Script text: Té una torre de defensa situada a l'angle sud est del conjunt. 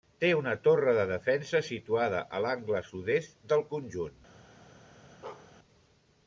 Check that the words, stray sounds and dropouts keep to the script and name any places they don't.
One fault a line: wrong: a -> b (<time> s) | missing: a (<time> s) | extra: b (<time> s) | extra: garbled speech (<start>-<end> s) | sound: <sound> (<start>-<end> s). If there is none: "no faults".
sound: bark (5.2-5.5 s)